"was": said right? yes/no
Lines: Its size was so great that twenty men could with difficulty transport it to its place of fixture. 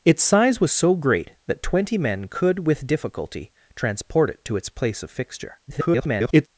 yes